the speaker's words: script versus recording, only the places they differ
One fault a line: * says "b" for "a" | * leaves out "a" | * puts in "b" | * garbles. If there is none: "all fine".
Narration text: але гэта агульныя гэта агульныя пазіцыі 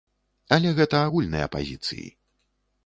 * leaves out "гэта агульныя"